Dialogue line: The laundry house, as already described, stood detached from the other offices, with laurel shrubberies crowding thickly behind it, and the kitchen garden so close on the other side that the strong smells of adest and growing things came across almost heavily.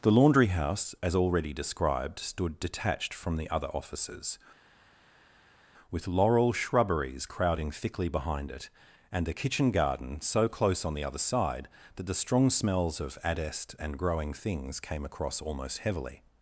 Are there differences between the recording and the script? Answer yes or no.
no